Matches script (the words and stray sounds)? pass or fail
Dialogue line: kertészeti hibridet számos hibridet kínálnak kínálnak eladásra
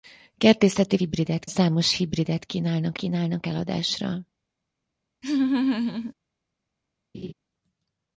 fail